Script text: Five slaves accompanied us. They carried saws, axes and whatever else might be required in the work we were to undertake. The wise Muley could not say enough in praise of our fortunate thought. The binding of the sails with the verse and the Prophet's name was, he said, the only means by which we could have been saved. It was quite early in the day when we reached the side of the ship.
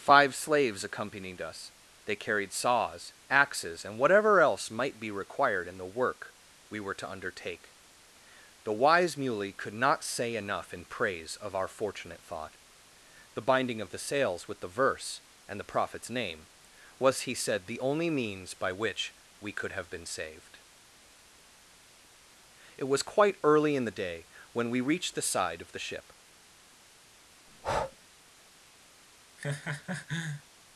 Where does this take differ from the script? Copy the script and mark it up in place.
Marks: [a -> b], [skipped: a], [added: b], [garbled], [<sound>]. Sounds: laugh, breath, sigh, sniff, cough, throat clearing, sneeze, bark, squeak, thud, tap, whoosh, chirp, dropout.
Five slaves accompanied us. They carried saws, axes and whatever else might be required in the work we were to undertake. The wise Muley could not say enough in praise of our fortunate thought. The binding of the sails with the verse and the Prophet's name was, he said, the only means by which we could have been saved. It was quite early in the day when we reached the side of the ship. [breath] [laugh]